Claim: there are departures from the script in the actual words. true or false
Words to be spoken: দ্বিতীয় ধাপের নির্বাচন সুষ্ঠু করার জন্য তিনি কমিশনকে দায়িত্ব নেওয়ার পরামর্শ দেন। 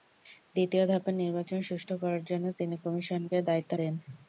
true